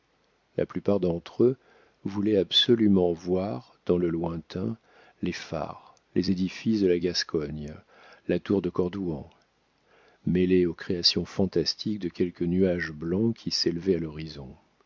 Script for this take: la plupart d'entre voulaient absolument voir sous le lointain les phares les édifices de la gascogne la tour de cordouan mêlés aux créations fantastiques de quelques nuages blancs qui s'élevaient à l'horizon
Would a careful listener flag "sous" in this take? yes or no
yes